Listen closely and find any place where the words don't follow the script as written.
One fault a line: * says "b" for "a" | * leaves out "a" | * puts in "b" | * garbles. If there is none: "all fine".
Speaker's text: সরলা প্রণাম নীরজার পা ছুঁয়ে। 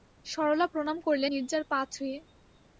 * puts in "করলে"